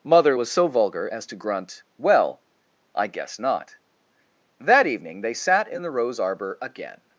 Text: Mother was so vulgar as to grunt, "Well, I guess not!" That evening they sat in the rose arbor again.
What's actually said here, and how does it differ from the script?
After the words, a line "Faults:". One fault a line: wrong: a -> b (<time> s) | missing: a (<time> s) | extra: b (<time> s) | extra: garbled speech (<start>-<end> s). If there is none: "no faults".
Mother was so vulgar as to grunt, "Well, I guess not!" That evening they sat in the rose arbor again.
Faults:
no faults